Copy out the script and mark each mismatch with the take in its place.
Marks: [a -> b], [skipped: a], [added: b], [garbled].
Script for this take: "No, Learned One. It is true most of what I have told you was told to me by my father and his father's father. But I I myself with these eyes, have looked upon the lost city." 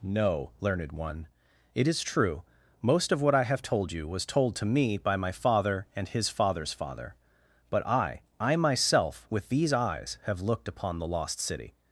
"No, Learned One. It is true most of what I have told you was told to me by my father and his father's father. But I I myself with these eyes, have looked upon the lost city."